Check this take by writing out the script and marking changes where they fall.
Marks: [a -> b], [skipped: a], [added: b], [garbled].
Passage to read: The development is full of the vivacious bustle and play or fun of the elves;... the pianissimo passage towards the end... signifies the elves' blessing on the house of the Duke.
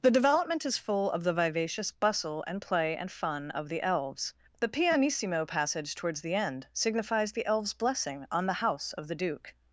The development is full of the vivacious bustle and play [or -> and] fun of the elves;... the pianissimo passage towards the end... signifies the elves' blessing on the house of the Duke.